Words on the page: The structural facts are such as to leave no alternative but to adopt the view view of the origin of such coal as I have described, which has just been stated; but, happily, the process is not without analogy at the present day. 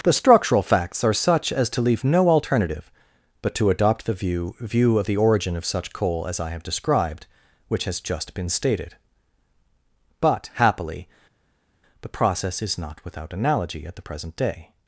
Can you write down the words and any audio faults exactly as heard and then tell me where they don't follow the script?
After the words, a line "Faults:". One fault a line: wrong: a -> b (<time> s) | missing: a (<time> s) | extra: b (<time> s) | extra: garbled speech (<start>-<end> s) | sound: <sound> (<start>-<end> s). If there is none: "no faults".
The structural facts are such as to leave no alternative but to adopt the view view of the origin of such coal as I have described, which has just been stated; but, happily, the process is not without analogy at the present day.
Faults:
no faults